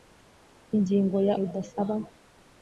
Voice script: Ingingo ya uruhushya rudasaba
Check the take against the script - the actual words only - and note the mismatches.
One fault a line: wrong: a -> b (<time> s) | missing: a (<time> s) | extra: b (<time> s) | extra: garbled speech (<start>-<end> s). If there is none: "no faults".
missing: uruhushya (1.4 s)